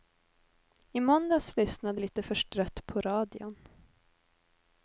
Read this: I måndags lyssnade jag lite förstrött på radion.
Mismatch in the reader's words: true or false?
true